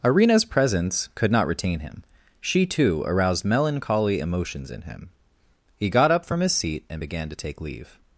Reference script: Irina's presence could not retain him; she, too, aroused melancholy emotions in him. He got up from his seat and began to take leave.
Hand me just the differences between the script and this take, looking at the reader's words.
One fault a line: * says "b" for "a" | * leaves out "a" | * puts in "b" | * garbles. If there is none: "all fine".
all fine